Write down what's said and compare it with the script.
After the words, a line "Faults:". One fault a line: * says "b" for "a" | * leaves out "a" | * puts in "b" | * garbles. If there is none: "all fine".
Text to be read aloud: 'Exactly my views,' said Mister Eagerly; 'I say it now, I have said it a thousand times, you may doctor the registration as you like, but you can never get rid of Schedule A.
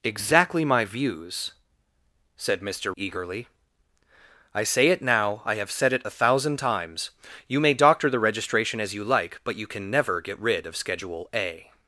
'Exactly my views,' said Mister Eagerly; 'I say it now, I have said it a thousand times, you may doctor the registration as you like, but you can never get rid of Schedule A.
Faults:
all fine